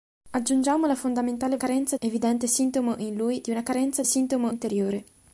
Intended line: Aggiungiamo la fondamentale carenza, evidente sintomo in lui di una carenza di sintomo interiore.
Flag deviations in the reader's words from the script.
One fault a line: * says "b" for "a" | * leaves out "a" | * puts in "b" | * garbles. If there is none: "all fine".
all fine